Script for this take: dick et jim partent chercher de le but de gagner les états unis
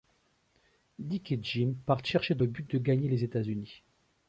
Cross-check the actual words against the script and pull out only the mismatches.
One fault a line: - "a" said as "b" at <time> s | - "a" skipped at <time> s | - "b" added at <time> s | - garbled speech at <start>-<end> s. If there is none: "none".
none